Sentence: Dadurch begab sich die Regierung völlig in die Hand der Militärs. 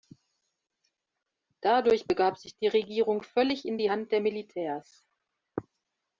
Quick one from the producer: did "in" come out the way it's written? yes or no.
yes